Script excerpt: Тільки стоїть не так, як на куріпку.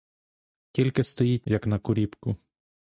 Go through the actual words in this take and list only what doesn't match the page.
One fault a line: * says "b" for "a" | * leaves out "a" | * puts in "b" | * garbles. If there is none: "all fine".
* leaves out "не так"